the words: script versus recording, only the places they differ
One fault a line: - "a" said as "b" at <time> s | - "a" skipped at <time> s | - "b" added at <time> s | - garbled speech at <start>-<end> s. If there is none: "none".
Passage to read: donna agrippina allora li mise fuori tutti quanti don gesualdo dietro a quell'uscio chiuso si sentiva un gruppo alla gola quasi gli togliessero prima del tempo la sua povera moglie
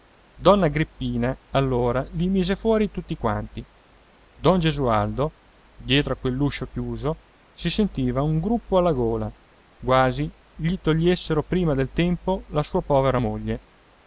none